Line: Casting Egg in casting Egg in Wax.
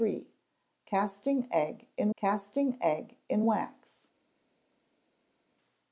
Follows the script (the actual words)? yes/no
yes